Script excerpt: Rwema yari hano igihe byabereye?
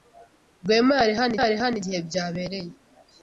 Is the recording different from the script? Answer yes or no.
yes